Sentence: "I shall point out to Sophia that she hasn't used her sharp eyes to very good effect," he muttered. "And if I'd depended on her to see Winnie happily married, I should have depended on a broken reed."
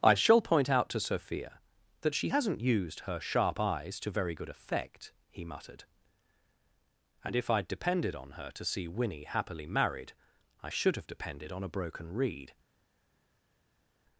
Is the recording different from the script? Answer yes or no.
no